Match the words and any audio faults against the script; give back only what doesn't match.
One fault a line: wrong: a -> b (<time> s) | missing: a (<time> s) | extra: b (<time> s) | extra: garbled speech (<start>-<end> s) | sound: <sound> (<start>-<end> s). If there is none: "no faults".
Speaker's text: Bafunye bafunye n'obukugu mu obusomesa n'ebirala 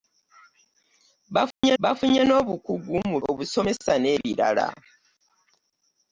sound: dropout (1.5-1.6 s)